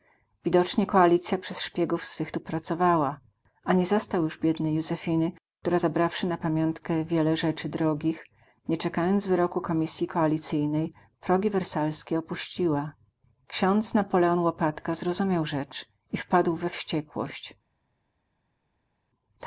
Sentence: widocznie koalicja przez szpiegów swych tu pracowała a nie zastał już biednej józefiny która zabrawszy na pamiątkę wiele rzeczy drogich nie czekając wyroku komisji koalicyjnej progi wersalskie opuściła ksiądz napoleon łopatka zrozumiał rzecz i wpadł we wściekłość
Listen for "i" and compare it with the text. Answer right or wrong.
right